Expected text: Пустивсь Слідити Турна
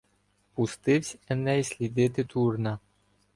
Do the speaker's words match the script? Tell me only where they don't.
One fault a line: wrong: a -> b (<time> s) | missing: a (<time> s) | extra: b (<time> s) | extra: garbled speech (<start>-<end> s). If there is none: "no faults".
extra: Еней (1.3 s)